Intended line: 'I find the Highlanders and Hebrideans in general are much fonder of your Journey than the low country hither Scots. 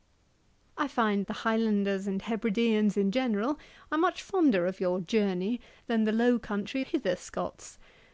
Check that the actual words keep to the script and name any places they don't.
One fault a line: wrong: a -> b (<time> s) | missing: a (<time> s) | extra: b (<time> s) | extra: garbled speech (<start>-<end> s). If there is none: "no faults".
no faults